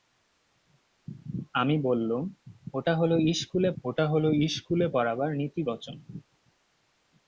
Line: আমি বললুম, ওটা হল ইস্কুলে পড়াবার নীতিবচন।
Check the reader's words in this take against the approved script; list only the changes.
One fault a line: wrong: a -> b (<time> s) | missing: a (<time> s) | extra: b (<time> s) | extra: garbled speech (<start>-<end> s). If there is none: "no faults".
extra: ওটা হল ইস্কুলে (3.8 s)